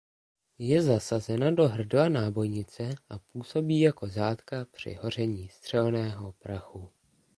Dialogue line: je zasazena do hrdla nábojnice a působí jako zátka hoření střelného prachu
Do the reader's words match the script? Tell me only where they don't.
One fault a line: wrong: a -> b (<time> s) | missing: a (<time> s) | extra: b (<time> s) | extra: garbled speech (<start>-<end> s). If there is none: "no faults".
extra: při (4.7 s)